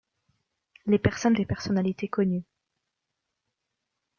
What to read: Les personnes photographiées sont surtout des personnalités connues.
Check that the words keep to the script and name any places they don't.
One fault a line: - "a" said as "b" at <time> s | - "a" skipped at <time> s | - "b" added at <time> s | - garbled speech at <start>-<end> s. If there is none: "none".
- "photographiées sont surtout" skipped at 1.4 s